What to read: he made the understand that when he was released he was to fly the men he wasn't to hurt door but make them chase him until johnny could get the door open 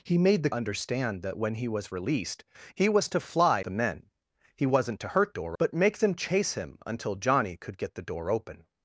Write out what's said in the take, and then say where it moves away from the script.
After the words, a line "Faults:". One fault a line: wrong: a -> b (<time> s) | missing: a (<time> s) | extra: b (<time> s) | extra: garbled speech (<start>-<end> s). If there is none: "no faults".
he made the understand that when he was released he was to fly the men he wasn't to hurt door but make them chase him until johnny could get the door open
Faults:
no faults